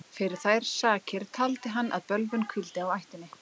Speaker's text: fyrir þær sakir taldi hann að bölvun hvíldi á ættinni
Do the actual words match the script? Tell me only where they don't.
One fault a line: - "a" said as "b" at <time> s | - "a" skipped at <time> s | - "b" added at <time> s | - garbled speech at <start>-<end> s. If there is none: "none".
none